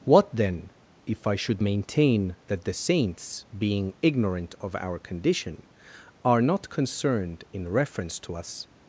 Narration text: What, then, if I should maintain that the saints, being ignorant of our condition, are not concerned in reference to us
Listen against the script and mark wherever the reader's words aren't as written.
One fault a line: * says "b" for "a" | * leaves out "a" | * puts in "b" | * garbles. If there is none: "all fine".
all fine